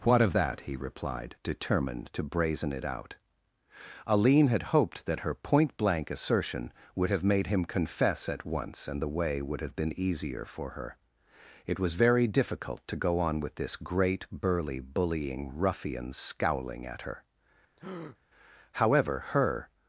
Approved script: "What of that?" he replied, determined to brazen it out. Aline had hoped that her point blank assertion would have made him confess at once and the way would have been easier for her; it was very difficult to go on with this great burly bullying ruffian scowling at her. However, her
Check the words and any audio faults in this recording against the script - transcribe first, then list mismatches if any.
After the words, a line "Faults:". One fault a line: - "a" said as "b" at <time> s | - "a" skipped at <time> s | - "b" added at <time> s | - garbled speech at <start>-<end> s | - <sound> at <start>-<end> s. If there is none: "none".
"What of that?" he replied, determined to brazen it out. Aline had hoped that her point blank assertion would have made him confess at once and the way would have been easier for her; it was very difficult to go on with this great burly bullying ruffian scowling at her. However, her
Faults:
- breath at 17.8-18.2 s